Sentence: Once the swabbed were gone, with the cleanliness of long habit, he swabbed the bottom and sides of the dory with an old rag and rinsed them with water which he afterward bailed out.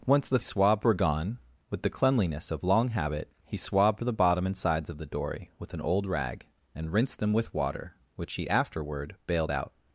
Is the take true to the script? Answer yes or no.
yes